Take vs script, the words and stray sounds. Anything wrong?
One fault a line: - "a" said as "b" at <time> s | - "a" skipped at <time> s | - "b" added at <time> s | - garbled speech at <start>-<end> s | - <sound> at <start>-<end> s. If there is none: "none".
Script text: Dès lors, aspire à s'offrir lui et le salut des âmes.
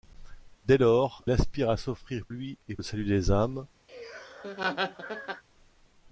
- laugh at 3.9-5.4 s